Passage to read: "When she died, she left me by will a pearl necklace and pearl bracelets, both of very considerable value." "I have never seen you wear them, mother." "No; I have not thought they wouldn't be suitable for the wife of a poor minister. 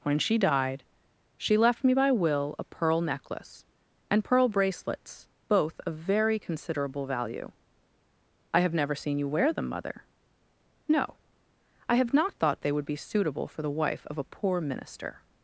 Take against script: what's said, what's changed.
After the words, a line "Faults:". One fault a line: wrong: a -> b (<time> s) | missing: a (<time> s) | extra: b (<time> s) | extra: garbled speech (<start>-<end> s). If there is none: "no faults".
"When she died, she left me by will a pearl necklace and pearl bracelets, both of very considerable value." "I have never seen you wear them, mother." "No; I have not thought they would be suitable for the wife of a poor minister.
Faults:
wrong: wouldn't -> would (12.7 s)